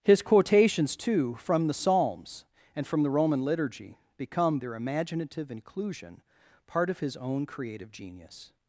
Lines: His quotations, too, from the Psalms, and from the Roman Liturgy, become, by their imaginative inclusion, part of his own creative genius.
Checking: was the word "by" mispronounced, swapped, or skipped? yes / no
yes